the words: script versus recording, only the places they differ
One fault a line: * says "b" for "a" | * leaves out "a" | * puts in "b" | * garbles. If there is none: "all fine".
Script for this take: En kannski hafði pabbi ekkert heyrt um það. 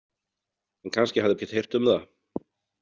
* leaves out "pabbi"